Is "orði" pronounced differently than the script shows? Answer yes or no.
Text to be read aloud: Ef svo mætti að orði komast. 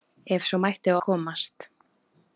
yes